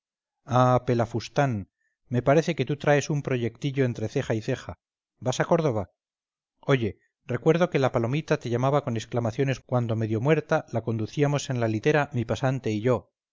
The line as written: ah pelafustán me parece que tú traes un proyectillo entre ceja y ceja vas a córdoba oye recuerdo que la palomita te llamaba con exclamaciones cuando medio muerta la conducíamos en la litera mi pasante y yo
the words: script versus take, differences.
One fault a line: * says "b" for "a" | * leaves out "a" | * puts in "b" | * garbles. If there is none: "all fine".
all fine